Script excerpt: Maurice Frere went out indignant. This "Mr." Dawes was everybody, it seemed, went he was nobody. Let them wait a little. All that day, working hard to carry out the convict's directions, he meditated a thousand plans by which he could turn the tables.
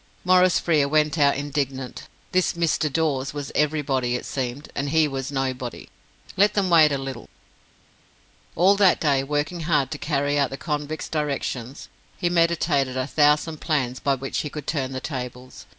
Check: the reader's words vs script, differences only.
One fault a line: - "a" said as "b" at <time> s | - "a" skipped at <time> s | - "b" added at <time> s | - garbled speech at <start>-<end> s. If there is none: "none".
- "went" said as "and" at 4.7 s